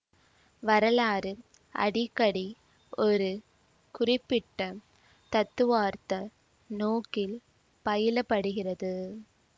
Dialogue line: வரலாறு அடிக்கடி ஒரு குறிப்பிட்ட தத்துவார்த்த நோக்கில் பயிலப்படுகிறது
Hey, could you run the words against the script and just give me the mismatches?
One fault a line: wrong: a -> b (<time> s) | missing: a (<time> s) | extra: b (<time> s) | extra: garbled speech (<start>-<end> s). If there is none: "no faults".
no faults